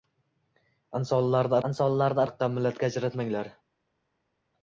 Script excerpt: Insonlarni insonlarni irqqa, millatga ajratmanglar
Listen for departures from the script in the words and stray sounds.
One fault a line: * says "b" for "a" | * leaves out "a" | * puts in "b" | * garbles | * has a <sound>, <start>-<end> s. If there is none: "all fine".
all fine